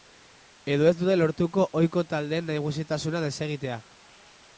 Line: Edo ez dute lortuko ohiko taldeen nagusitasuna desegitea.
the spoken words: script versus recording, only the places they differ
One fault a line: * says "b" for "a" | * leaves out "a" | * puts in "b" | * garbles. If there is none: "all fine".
all fine